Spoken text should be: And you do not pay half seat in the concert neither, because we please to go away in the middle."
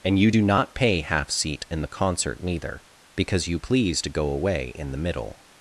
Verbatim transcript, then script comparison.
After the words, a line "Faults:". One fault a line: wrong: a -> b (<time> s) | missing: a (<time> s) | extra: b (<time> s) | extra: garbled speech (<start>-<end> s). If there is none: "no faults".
And you do not pay half seat in the concert neither, because you please to go away in the middle."
Faults:
wrong: we -> you (3.5 s)